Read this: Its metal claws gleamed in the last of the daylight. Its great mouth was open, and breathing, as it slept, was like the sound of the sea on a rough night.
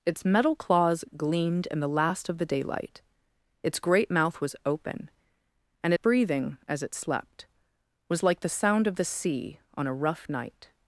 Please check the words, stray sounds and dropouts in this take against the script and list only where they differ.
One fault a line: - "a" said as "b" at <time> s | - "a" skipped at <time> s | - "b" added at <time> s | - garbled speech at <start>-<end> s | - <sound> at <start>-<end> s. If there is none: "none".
none